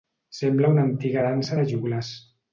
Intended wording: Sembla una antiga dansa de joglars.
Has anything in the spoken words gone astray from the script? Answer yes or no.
no